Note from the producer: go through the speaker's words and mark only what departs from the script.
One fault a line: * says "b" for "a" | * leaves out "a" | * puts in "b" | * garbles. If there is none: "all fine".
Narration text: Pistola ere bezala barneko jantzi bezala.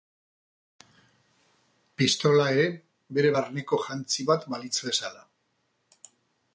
* says "bere" for "bezala"
* puts in "bat balitz"